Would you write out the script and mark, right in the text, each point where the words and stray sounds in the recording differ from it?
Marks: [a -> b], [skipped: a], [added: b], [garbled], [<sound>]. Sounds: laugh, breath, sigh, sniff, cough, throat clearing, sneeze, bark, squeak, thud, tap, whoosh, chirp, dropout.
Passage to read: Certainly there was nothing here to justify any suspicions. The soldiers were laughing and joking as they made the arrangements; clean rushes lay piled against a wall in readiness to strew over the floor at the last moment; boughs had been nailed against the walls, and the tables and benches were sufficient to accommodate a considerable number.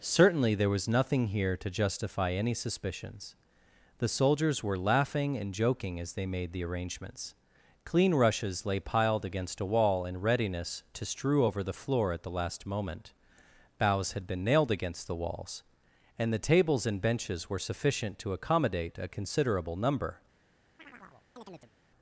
Certainly there was nothing here to justify any suspicions. The soldiers were laughing and joking as they made the arrangements; clean rushes lay piled against a wall in readiness to strew over the floor at the last moment; boughs had been nailed against the walls, and the tables and benches were sufficient to accommodate a considerable number. [chirp]